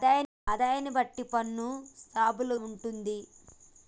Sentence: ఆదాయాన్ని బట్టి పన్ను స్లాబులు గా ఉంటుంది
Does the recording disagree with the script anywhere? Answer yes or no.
yes